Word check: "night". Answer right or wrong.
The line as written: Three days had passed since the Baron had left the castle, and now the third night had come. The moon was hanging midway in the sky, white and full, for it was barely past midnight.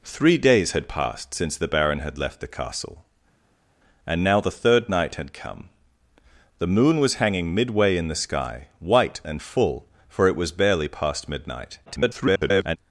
right